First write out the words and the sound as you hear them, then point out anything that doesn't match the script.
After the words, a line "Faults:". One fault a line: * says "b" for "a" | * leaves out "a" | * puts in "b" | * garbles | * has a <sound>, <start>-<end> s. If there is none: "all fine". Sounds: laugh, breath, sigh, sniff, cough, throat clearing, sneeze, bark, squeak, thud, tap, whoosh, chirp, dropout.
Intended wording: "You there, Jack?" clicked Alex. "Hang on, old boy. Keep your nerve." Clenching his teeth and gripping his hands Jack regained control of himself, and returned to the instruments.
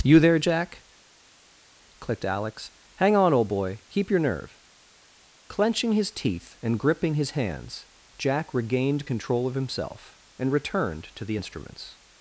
"You there, Jack?" clicked Alex. "Hang on, old boy. Keep your nerve." Clenching his teeth and gripping his hands Jack regained control of himself, and returned to the instruments.
Faults:
all fine